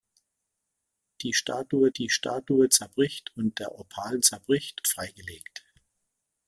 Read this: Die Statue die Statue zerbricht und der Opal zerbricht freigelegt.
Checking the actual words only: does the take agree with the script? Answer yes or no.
yes